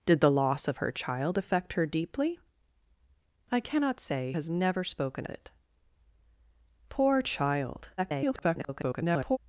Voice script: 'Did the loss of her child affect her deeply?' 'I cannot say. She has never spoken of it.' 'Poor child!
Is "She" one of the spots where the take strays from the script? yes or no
yes